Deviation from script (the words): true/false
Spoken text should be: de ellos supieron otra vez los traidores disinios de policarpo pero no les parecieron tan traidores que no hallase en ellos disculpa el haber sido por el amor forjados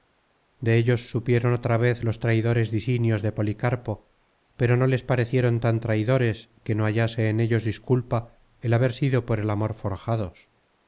false